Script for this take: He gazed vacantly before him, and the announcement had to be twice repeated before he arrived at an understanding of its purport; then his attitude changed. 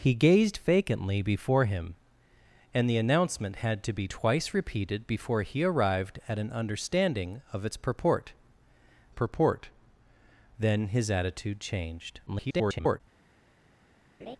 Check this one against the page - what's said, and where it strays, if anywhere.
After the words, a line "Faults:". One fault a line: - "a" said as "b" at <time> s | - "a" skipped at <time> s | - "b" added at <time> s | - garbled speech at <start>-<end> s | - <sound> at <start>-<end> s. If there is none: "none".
He gazed vacantly before him, and the announcement had to be twice repeated before he arrived at an understanding of its purport purport; then his attitude changed. [garbled]
Faults:
- "purport" added at 9.1 s
- garbled speech at 12.3-13.0 s
- laugh at 14.2-14.4 s